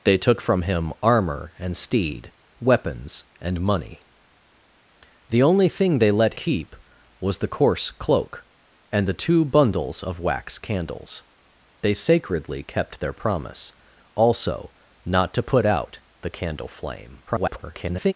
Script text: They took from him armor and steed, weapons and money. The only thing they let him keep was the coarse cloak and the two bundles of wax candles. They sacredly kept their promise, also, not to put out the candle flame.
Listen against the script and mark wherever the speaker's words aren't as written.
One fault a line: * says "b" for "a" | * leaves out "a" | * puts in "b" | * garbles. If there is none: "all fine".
* leaves out "him"
* garbles